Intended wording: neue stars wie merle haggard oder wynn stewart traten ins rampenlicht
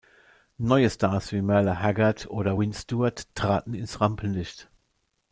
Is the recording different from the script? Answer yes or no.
no